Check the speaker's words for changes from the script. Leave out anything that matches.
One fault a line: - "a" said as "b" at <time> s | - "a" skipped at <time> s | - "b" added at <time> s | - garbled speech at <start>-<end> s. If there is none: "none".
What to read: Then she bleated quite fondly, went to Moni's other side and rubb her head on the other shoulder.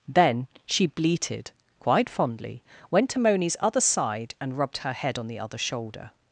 - "rubb" said as "rubbed" at 4.6 s